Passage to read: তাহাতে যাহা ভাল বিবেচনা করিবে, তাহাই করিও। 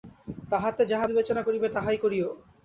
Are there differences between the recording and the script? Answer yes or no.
yes